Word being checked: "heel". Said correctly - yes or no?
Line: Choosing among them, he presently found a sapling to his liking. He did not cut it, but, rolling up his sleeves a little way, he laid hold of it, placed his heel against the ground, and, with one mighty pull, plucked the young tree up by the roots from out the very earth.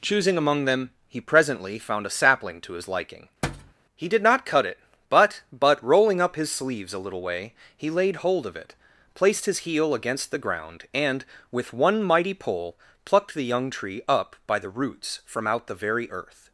yes